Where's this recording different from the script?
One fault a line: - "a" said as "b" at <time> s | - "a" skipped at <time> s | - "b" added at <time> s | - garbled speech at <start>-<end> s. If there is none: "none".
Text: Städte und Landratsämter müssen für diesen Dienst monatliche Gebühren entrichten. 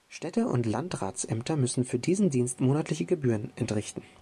none